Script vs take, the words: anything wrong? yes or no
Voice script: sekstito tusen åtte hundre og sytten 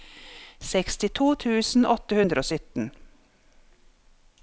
no